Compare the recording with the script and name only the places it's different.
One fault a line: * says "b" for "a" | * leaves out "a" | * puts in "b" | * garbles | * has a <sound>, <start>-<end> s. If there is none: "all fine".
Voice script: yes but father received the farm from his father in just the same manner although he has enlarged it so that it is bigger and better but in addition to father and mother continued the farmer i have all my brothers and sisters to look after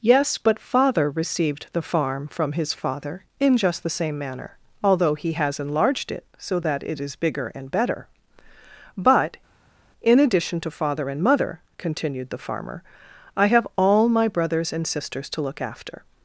all fine